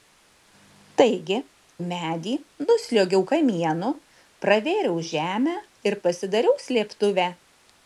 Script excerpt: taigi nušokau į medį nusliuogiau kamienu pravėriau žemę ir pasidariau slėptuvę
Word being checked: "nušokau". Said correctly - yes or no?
no